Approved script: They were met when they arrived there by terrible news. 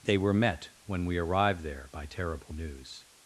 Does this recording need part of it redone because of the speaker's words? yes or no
yes